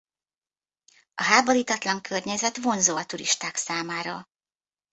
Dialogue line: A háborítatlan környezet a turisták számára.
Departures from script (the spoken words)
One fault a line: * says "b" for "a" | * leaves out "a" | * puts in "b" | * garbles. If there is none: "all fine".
* puts in "vonzó"